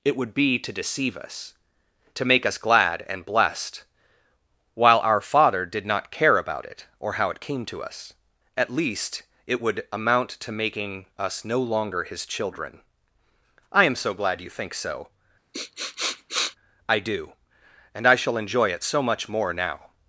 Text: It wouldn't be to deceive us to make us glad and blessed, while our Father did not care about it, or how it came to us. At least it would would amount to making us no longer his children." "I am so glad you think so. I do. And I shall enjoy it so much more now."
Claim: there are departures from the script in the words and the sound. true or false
true